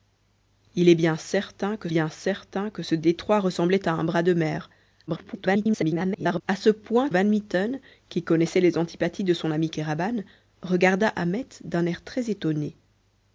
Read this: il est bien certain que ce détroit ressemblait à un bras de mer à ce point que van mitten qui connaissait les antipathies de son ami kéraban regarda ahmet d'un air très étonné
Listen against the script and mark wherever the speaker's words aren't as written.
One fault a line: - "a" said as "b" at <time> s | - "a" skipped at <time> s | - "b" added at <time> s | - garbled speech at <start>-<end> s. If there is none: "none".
- "bien certain que" added at 1.9 s
- garbled speech at 5.1-6.4 s
- "que" skipped at 7.1 s